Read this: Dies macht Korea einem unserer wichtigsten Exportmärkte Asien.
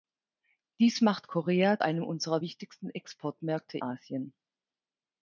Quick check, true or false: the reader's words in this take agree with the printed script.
true